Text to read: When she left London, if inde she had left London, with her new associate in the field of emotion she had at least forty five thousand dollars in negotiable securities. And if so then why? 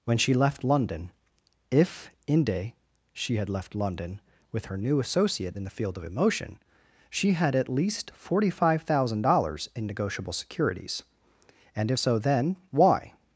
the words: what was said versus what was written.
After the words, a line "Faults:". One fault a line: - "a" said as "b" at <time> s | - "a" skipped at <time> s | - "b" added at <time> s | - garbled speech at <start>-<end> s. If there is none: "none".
When she left London, if inde she had left London, with her new associate in the field of emotion she had at least forty five thousand dollars in negotiable securities. And if so then why?
Faults:
none